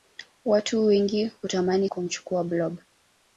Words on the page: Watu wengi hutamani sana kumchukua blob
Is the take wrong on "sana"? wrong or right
wrong